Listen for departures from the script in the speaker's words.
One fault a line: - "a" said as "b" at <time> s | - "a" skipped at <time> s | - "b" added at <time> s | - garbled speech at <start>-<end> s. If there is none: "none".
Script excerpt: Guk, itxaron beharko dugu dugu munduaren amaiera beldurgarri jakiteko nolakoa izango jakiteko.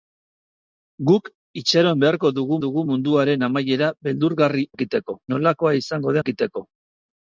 none